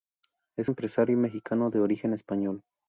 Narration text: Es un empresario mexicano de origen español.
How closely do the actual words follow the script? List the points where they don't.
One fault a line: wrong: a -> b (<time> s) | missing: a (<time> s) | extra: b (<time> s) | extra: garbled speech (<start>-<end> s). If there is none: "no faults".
missing: un (0.7 s)